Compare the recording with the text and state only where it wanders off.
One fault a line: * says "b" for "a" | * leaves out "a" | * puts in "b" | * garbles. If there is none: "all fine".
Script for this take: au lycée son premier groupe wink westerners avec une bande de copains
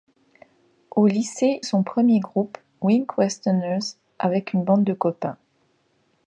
all fine